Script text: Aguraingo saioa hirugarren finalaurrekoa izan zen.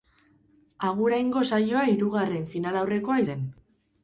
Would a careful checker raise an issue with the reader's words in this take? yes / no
yes